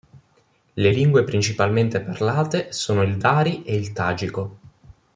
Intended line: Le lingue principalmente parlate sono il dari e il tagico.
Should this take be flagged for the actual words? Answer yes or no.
no